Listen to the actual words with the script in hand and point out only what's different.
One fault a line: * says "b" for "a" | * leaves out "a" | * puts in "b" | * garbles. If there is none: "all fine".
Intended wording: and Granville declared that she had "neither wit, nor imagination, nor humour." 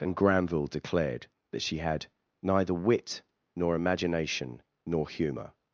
all fine